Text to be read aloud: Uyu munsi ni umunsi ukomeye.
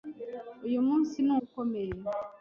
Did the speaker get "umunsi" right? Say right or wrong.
wrong